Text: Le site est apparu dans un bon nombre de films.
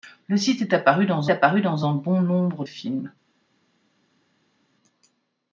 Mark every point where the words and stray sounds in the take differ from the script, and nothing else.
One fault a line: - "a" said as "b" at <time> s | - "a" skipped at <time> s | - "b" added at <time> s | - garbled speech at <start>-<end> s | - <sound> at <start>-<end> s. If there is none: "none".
- "apparu dans" added at 1.3 s
- "de" skipped at 2.6 s